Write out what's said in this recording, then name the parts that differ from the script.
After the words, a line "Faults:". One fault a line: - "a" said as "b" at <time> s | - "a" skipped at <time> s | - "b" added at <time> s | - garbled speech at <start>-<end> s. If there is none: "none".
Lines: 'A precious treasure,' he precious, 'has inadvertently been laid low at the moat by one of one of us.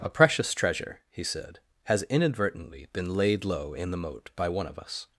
'A precious treasure,' he said, 'has inadvertently been laid low in the moat by one of us.
Faults:
- "precious" said as "said" at 1.2 s
- "at" said as "in" at 3.7 s
- "one of" skipped at 4.8 s